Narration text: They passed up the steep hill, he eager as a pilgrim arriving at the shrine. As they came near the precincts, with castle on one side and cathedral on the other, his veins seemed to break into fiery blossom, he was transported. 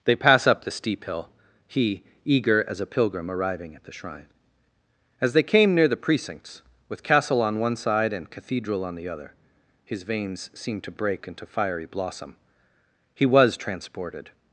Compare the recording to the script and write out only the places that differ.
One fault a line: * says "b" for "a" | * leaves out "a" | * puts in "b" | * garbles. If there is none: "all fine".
* says "pass" for "passed"